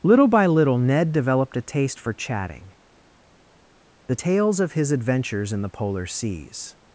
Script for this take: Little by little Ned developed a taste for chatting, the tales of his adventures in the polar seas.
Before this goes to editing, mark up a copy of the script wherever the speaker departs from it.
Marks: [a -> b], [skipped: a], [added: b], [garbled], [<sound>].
Little by little Ned developed a taste for chatting, the tales of his adventures in the polar seas.